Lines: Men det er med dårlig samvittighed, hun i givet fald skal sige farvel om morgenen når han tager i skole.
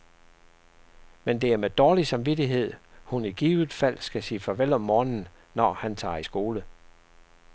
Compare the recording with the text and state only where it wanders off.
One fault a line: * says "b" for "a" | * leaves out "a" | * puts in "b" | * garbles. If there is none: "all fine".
all fine